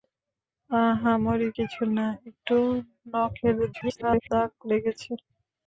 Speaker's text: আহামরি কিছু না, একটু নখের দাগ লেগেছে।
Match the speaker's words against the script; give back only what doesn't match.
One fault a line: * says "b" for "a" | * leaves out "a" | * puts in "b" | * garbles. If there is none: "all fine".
* garbles